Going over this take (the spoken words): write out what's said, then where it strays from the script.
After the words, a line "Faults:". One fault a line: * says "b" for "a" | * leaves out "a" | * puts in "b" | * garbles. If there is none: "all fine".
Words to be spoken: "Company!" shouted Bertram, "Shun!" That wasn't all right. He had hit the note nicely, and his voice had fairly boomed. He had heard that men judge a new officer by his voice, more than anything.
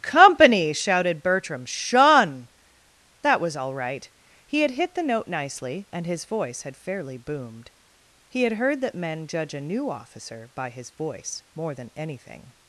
"Company!" shouted Bertram, "Shun!" That was all right. He had hit the note nicely, and his voice had fairly boomed. He had heard that men judge a new officer by his voice, more than anything.
Faults:
* says "was" for "wasn't"